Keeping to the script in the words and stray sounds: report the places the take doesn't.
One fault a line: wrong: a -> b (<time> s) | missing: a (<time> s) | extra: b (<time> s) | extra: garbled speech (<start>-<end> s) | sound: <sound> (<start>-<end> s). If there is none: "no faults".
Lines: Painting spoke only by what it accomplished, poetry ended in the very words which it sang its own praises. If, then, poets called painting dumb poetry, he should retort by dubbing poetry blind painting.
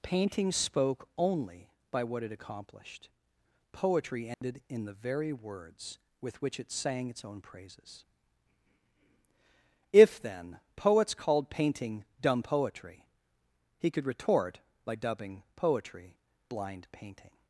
sound: dropout (4.3-4.4 s)
extra: with (6.2 s)
wrong: should -> could (13.9 s)